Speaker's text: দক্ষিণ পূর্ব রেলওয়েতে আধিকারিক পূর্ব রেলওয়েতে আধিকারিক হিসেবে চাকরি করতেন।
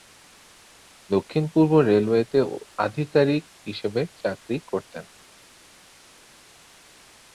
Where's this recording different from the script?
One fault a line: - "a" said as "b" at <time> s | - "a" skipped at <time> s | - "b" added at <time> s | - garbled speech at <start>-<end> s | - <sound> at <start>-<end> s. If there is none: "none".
- "পূর্ব রেলওয়েতে আধিকারিক" skipped at 3.4 s